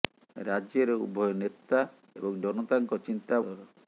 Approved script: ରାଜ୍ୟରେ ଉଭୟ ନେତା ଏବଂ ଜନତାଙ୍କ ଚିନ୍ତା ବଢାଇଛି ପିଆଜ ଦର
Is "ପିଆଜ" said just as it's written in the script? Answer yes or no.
no